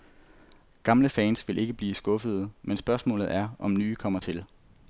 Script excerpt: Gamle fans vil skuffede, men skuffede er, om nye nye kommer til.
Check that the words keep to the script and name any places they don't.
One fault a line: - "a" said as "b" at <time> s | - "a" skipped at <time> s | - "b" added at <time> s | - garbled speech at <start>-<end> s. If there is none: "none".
- "ikke blive" added at 1.6 s
- "skuffede" said as "spørgsmålet" at 2.8 s
- "nye" skipped at 4.0 s